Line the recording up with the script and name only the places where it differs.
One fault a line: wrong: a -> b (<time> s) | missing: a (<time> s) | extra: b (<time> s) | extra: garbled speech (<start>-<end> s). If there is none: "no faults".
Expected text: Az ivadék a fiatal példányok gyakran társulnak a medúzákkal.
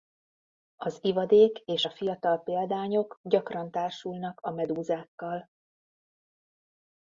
extra: és (1.6 s)